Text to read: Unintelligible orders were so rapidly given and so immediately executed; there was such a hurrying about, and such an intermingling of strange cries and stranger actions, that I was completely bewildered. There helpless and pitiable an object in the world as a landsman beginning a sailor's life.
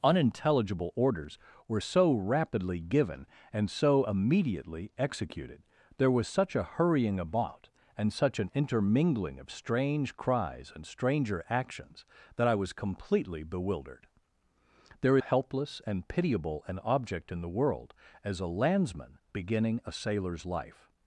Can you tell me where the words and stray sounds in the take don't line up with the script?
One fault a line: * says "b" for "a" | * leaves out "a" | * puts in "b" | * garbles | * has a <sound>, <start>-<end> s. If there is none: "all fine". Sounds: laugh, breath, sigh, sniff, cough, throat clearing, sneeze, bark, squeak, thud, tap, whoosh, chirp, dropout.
all fine